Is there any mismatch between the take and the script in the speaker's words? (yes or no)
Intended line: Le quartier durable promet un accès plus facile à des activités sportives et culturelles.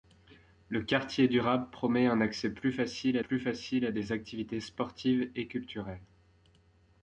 yes